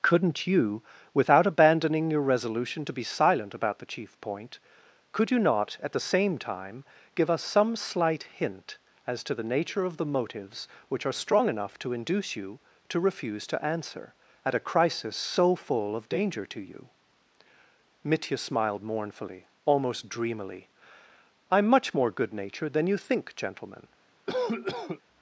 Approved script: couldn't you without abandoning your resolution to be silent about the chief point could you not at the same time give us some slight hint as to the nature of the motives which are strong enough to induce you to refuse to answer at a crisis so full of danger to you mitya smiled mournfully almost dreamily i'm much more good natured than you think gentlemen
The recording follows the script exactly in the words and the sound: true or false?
false